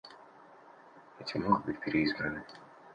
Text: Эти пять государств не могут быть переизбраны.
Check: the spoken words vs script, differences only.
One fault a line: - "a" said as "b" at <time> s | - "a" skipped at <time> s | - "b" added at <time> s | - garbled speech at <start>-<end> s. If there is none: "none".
- "пять государств" skipped at 1.4 s